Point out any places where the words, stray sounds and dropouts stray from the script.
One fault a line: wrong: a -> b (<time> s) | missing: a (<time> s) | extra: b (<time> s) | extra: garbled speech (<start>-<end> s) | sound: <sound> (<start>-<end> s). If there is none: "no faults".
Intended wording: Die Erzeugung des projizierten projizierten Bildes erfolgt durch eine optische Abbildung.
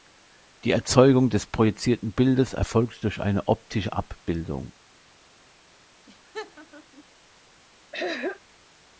missing: projizierten (2.1 s)
sound: laugh (6.1-7.0 s)
sound: throat clearing (7.9-8.4 s)